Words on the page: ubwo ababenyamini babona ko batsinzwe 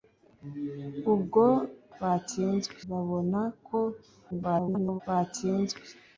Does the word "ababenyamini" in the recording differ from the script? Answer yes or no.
yes